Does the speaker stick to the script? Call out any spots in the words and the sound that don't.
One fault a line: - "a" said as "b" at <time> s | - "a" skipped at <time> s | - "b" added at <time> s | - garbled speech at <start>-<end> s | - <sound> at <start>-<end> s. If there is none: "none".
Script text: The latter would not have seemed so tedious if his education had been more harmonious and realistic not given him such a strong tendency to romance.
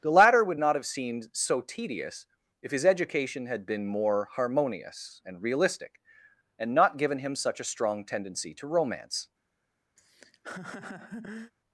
- "and" added at 6.6 s
- laugh at 10.0-11.5 s